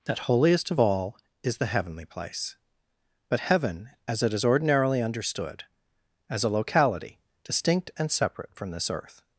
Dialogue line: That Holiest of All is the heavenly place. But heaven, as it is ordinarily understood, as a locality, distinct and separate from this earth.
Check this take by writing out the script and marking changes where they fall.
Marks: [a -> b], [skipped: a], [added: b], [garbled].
That Holiest of All is the heavenly place. But heaven, as it is ordinarily understood, as a locality, distinct and separate from this earth.